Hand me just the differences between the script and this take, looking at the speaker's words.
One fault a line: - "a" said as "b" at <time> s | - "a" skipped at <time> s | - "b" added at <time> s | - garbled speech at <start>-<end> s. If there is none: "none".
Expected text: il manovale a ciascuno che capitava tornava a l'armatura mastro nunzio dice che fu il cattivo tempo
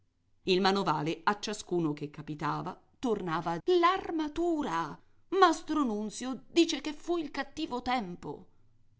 none